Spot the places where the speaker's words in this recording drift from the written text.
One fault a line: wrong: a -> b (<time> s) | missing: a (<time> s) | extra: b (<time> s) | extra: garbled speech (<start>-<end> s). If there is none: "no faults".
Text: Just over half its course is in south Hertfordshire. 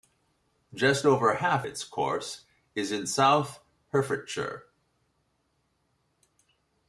no faults